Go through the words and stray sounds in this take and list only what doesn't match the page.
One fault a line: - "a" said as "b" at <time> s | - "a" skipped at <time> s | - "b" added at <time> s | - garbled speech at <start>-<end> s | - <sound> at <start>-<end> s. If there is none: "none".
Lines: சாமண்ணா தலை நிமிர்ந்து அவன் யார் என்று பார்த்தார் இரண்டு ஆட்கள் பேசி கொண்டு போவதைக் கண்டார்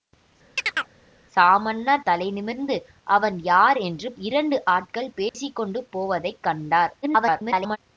- chirp at 0.6-0.9 s
- "பார்த்தார்" skipped at 4.1 s
- dropout at 5.3-5.3 s
- garbled speech at 7.0-7.8 s